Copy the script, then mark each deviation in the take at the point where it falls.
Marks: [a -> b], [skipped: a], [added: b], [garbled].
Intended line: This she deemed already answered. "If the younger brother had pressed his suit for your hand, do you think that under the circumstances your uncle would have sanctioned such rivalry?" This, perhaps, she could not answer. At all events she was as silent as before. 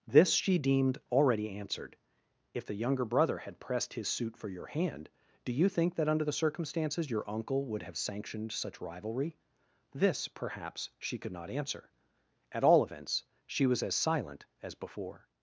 This she deemed already answered. "If the younger brother had pressed his suit for your hand, do you think that under the circumstances your uncle would have sanctioned such rivalry?" This, perhaps, she could not answer. At all events she was as silent as before.